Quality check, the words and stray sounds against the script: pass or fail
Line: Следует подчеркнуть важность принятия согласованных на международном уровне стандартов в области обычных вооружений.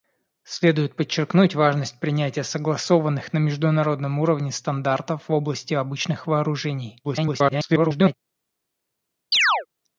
fail